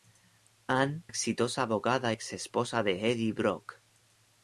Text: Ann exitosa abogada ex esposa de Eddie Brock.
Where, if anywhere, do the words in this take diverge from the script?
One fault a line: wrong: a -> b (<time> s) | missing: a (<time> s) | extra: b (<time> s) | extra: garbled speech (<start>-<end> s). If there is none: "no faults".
no faults